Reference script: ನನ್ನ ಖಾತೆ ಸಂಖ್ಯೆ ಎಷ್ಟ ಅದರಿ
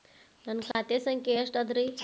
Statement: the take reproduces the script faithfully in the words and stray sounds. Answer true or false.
false